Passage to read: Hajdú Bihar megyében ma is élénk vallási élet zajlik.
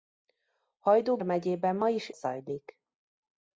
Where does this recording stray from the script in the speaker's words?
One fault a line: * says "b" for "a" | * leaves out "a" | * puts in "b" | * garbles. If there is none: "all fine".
* leaves out "Bihar"
* leaves out "élénk vallási élet"